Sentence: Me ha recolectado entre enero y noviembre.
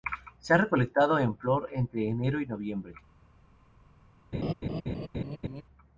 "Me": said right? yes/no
no